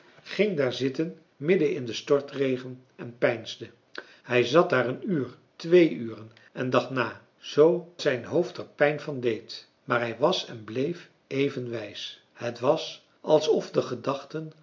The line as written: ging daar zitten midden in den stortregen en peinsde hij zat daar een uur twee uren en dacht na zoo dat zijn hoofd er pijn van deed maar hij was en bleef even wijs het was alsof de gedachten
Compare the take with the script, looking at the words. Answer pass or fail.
fail